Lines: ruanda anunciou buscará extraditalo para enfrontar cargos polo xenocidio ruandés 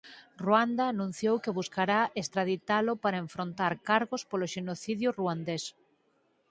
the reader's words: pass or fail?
fail